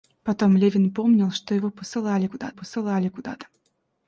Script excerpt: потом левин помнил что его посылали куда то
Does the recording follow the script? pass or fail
fail